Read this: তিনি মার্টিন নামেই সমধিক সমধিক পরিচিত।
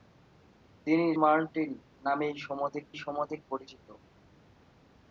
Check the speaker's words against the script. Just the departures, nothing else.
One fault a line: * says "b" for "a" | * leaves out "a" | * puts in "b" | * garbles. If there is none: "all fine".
all fine